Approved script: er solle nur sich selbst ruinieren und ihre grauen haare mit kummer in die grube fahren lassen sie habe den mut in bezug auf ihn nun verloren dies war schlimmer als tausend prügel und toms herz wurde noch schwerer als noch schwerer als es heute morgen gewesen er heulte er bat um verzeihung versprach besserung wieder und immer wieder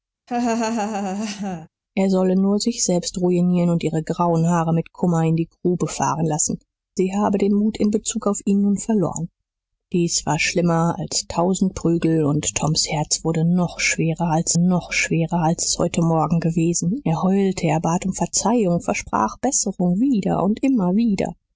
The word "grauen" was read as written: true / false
true